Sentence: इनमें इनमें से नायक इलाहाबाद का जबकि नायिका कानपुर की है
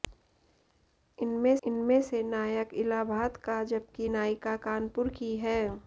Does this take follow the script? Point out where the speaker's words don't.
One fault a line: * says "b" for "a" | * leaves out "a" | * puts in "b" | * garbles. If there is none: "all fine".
all fine